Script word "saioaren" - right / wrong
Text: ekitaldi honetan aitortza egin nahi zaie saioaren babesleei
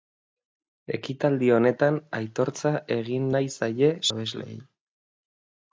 wrong